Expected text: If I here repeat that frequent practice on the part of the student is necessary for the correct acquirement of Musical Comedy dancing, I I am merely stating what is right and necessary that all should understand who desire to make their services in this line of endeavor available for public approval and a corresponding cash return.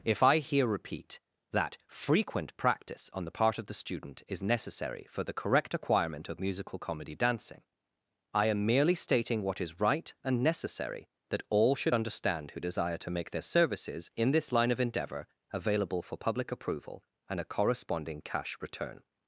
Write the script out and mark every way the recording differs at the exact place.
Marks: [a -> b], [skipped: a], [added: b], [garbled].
If I here repeat that frequent practice on the part of the student is necessary for the correct acquirement of Musical Comedy dancing, I [skipped: I] am merely stating what is right and necessary that all should understand who desire to make their services in this line of endeavor available for public approval and a corresponding cash return.